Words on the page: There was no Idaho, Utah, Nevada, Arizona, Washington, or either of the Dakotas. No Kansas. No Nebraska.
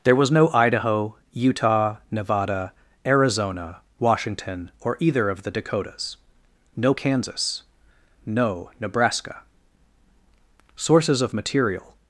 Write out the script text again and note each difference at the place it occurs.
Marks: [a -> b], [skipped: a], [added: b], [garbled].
There was no Idaho, Utah, Nevada, Arizona, Washington, or either of the Dakotas. No Kansas. No Nebraska. [added: Sources of material]